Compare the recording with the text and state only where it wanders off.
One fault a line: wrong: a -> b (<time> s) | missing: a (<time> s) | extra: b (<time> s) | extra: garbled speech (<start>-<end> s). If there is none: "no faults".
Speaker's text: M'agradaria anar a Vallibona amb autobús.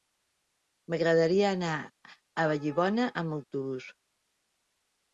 no faults